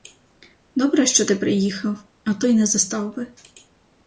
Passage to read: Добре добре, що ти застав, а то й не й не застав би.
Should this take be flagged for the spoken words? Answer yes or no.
yes